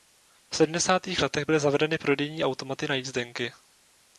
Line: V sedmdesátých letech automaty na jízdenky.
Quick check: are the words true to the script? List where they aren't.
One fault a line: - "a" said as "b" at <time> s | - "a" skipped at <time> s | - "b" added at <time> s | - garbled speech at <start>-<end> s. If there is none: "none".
- "byly zavedeny prodejní" added at 1.4 s